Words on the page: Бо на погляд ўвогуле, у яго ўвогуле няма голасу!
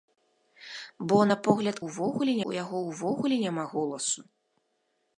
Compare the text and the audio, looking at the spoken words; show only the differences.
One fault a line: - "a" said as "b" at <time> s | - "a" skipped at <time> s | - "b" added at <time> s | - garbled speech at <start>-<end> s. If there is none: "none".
none